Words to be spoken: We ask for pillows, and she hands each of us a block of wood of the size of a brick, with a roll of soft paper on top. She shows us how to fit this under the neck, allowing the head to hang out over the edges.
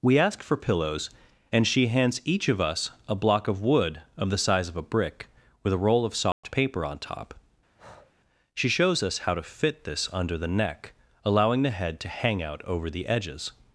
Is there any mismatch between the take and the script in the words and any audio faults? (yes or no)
yes